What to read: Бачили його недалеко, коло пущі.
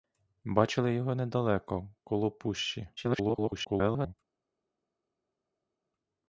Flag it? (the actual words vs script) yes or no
yes